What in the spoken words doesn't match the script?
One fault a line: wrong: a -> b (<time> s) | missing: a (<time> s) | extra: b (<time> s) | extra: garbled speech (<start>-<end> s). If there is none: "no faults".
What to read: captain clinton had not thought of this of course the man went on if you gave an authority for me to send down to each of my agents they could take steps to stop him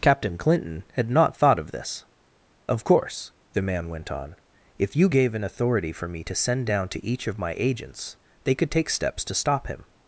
no faults